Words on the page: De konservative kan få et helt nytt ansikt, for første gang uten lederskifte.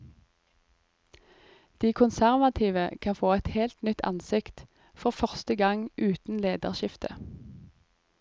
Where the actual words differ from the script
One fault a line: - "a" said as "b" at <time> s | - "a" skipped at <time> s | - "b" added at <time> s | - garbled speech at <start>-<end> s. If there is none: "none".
none